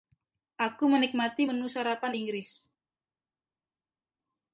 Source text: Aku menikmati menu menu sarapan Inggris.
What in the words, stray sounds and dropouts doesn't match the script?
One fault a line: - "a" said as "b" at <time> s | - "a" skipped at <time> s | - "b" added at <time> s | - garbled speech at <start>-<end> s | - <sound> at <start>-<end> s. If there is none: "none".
- "menu" skipped at 1.7 s